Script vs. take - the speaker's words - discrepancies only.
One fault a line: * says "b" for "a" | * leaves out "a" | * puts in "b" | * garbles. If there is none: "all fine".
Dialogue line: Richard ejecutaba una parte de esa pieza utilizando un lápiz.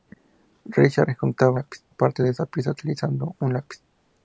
* says "lápiz" for "una"